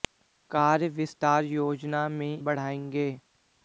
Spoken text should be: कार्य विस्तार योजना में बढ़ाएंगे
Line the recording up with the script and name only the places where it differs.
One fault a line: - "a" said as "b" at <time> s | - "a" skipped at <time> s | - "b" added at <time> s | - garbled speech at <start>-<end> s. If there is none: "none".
none